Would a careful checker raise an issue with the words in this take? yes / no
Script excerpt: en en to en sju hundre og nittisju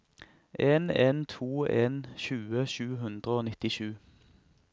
yes